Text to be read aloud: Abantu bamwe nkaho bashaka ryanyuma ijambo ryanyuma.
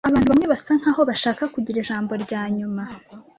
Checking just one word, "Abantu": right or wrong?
right